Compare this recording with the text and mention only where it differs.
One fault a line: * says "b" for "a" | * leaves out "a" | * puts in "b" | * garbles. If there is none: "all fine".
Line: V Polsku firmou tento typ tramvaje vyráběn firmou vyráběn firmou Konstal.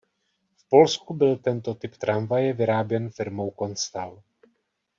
* says "byl" for "firmou"
* leaves out "vyráběn firmou"